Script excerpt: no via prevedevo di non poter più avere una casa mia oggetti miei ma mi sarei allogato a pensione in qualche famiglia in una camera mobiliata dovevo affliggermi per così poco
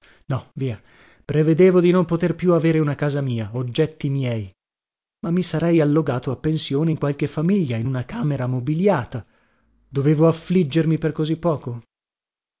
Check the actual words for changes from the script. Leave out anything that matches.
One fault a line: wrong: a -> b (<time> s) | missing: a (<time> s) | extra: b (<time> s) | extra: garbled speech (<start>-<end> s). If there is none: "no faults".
no faults